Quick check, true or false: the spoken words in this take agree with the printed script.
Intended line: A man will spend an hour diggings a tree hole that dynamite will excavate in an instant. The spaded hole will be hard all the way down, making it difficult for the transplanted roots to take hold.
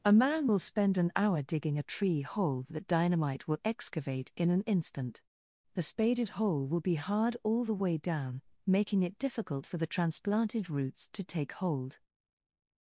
false